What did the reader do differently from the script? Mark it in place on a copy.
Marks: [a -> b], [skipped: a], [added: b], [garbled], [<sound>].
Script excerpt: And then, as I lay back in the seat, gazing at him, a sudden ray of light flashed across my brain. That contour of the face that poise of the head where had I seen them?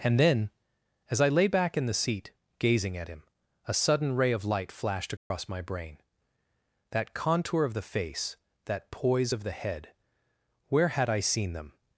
And then, as I lay back in the seat, gazing at him, a sudden ray of light flashed across [dropout] my brain. That contour of the face that poise of the head where had I seen them?